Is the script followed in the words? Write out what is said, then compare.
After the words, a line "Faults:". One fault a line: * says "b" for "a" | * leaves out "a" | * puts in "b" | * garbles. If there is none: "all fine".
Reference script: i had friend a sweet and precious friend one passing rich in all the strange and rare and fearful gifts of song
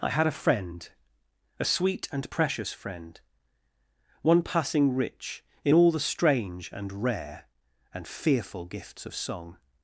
i had a friend a sweet and precious friend one passing rich in all the strange and rare and fearful gifts of song
Faults:
* puts in "a"